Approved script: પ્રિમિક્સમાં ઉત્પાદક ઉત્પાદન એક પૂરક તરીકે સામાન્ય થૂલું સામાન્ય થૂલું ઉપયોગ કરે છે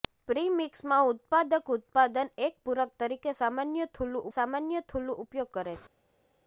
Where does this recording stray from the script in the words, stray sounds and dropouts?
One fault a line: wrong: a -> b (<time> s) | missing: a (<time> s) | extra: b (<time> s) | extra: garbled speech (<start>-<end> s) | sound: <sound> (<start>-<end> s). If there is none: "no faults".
no faults